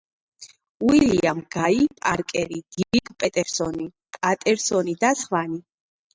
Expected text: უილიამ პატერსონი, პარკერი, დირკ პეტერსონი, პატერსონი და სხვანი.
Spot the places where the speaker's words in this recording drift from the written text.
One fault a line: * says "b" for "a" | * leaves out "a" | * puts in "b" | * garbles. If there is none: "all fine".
* says "გაი" for "პატერსონი"